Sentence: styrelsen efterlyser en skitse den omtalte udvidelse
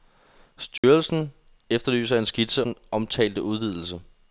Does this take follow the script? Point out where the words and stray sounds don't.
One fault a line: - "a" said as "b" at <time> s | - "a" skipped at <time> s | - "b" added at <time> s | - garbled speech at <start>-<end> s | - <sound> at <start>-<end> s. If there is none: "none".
- dropout at 0.8-0.8 s